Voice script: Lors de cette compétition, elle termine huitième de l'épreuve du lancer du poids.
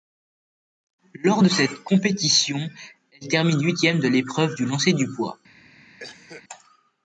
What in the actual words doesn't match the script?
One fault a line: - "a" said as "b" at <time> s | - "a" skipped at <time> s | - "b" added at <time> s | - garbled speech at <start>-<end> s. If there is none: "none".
none